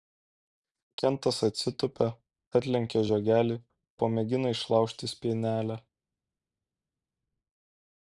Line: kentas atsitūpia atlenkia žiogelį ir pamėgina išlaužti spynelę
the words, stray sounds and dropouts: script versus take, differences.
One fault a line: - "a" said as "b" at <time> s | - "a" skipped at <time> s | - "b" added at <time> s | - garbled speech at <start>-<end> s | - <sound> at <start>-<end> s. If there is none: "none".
- "ir" skipped at 3.6 s